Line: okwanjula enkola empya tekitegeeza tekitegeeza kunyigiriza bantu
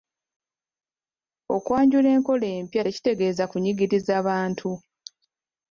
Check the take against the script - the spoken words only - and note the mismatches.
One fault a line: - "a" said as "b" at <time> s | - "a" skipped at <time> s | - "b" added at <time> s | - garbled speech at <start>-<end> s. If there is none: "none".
- "tekitegeeza" skipped at 3.4 s